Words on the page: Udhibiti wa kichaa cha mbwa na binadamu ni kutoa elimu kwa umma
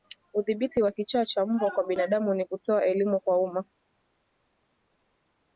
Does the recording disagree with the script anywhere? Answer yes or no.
yes